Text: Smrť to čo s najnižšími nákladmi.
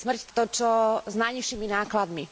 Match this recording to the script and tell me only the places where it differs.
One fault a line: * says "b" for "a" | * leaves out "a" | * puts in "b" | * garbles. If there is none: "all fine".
all fine